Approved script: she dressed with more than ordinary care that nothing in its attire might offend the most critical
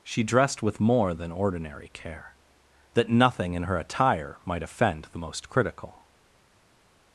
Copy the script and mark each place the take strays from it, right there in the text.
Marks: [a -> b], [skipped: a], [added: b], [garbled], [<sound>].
she dressed with more than ordinary care that nothing in [its -> her] attire might offend the most critical